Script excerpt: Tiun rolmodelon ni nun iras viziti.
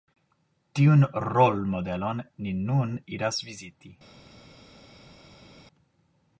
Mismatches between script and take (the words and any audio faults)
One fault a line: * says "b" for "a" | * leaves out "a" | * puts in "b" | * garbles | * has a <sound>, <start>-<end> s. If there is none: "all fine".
all fine